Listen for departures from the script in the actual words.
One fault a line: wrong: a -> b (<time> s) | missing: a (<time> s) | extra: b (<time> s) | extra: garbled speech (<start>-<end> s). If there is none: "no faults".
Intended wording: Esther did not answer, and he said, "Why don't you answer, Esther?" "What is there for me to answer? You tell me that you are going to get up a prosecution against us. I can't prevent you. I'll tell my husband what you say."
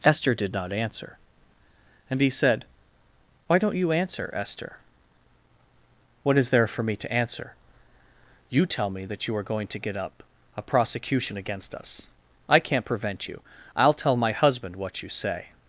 no faults